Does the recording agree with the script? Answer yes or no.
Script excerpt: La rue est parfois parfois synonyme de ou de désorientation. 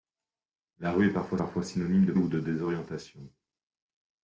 yes